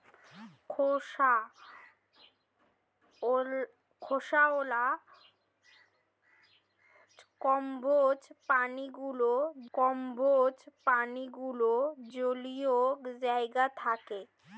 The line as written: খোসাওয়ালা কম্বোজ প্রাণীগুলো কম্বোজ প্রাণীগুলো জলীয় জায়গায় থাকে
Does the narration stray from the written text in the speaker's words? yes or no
no